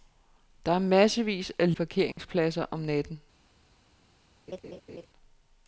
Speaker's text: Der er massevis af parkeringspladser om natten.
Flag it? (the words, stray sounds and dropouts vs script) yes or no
yes